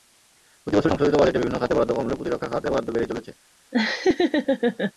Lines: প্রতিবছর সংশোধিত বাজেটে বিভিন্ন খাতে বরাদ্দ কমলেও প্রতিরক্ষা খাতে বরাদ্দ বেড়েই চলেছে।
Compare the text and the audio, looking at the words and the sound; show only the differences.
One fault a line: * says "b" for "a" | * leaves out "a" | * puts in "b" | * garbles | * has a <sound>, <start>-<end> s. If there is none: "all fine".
* has a laugh, 3.7-4.9 s